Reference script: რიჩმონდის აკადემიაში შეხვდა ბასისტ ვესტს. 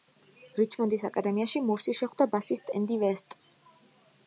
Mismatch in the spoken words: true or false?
true